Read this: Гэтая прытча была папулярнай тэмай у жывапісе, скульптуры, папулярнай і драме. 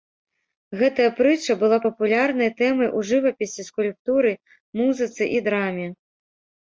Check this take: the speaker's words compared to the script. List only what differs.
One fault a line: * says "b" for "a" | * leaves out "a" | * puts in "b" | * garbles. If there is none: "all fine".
* says "музыцы" for "папулярнай"